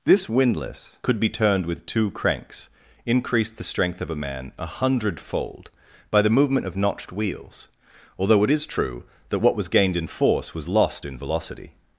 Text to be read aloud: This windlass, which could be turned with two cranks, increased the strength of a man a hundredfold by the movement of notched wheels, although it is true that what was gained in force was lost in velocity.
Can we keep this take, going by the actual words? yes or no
no